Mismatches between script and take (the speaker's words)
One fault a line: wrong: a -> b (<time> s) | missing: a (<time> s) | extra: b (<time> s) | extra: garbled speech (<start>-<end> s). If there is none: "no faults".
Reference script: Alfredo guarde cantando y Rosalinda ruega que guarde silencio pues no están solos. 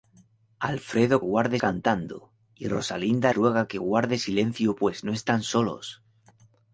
no faults